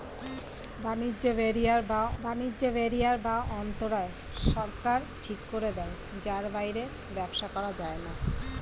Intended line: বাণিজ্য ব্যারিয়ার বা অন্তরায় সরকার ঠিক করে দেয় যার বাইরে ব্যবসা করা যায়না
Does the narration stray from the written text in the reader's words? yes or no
yes